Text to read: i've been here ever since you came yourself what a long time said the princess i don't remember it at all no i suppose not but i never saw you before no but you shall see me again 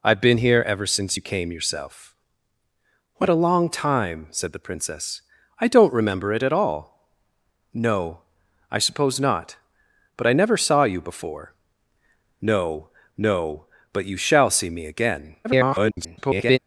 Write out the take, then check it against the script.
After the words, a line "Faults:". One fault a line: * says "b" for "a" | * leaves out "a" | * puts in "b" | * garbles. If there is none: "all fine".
i've been here ever since you came yourself what a long time said the princess i don't remember it at all no i suppose not but i never saw you before no no but you shall see me again [garbled]
Faults:
* puts in "no"
* garbles